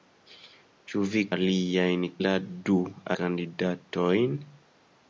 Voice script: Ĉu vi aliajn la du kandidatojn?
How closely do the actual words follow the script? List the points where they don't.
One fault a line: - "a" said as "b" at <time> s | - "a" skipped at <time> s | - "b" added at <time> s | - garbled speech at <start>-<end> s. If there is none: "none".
none